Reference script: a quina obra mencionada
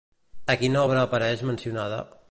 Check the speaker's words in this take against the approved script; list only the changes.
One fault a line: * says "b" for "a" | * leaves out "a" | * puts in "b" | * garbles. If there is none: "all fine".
* puts in "apareix"